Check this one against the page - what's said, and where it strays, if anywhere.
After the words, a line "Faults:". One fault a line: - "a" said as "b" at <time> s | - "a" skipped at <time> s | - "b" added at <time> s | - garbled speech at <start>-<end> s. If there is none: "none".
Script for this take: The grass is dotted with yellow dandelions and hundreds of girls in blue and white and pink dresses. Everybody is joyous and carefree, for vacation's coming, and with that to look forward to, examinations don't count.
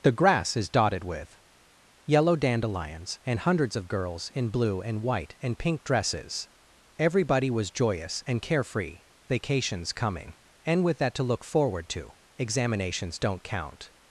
The grass is dotted with yellow dandelions and hundreds of girls in blue and white and pink dresses. Everybody was joyous and carefree, vacation's coming, and with that to look forward to, examinations don't count.
Faults:
- "is" said as "was" at 7.5 s
- "for" skipped at 9.0 s